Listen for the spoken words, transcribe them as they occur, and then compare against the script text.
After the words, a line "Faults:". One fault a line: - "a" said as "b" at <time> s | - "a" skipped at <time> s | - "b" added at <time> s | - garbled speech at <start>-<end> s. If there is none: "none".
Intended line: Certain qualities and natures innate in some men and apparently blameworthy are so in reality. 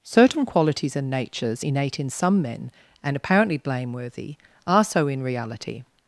Certain qualities and natures innate in some men and apparently blameworthy are so in reality.
Faults:
none